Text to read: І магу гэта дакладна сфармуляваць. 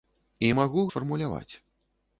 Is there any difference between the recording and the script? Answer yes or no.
yes